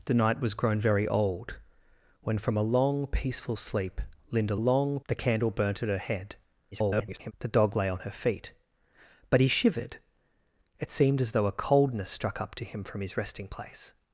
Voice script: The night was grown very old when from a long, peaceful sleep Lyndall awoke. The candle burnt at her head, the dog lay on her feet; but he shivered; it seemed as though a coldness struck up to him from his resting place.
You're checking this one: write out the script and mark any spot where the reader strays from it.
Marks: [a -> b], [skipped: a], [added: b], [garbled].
The night was grown very old when from a long, peaceful sleep Lyndall [awoke. -> long] The candle burnt at her head, [garbled] the dog lay on her feet; but he shivered; it seemed as though a coldness struck up to him from his resting place.